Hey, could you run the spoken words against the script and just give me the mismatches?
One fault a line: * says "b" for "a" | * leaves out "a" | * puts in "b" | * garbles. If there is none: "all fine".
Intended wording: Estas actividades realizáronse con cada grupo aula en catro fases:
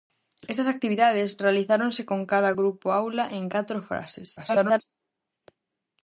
* garbles